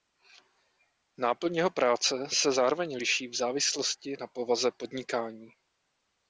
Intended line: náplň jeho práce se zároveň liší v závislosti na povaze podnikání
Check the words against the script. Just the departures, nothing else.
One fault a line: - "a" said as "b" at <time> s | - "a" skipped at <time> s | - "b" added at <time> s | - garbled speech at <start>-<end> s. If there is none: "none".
none